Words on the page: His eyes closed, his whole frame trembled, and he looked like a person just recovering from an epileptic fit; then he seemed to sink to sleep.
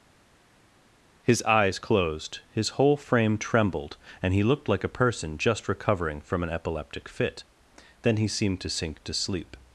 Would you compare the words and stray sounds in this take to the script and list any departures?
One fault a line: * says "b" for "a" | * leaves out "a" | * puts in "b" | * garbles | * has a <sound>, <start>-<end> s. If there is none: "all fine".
all fine